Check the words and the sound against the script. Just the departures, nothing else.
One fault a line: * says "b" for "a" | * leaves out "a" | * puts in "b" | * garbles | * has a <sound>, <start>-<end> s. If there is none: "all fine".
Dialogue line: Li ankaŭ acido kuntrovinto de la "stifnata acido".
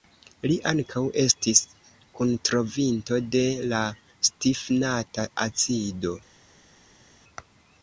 * says "estis" for "acido"